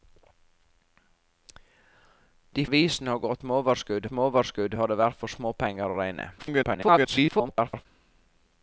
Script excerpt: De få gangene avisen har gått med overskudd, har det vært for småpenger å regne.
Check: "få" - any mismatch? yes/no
yes